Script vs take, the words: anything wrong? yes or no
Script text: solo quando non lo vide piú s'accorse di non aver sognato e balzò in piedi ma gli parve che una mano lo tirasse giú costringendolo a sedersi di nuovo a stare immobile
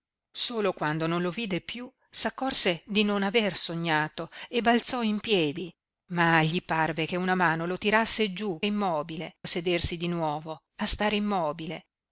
yes